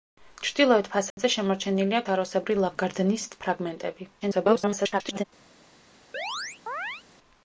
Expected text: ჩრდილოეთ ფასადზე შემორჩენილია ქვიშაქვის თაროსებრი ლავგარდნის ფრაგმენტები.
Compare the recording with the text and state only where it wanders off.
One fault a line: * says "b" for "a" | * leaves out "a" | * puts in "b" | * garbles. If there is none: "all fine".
* leaves out "ქვიშაქვის"
* garbles